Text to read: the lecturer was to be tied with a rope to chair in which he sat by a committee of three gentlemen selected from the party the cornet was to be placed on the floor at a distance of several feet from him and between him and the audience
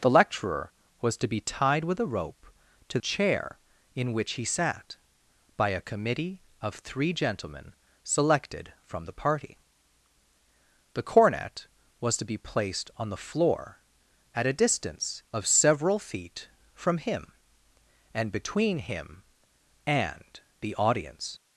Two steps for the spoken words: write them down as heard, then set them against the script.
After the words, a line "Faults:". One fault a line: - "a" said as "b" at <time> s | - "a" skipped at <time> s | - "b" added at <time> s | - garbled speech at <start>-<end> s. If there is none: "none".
the lecturer was to be tied with a rope to chair in which he sat by a committee of three gentlemen selected from the party the cornet was to be placed on the floor at a distance of several feet from him and between him and the audience
Faults:
none